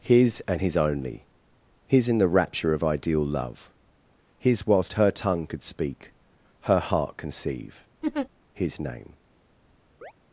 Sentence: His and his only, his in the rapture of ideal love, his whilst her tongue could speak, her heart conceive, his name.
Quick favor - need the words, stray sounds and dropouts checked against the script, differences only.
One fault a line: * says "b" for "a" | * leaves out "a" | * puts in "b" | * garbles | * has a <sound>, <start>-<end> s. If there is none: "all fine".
* has a laugh, 8.0-8.3 s
* has a chirp, 10.0-10.1 s